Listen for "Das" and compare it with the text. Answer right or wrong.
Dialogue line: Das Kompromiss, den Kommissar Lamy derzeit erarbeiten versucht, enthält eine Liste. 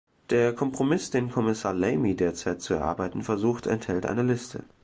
wrong